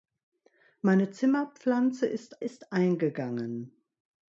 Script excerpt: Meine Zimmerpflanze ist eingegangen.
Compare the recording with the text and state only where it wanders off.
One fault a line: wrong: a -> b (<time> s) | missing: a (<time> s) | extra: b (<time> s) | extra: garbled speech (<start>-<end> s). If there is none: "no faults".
extra: ist (2.4 s)